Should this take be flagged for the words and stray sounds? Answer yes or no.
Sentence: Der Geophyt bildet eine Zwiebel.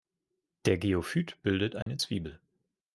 yes